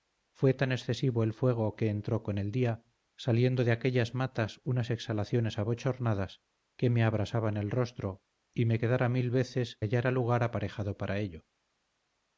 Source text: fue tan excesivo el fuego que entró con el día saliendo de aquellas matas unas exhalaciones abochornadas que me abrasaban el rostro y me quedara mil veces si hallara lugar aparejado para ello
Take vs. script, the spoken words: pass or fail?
fail